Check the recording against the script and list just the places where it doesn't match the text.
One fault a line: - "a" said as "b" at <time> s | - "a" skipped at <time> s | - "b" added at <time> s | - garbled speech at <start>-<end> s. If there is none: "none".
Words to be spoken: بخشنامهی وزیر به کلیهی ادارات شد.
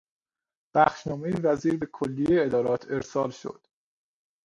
- "ارسال" added at 2.9 s